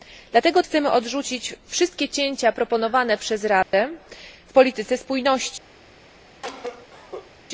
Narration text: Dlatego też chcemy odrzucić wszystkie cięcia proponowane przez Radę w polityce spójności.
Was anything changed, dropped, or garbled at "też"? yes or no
yes